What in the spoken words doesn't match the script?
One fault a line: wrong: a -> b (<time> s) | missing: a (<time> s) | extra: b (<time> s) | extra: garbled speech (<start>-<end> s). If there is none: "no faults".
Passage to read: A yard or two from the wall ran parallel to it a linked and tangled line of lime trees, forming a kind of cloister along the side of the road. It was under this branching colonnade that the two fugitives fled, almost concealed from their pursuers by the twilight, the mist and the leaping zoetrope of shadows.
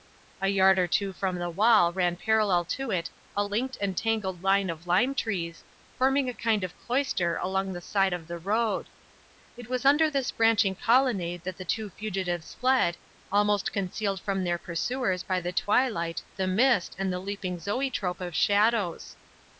no faults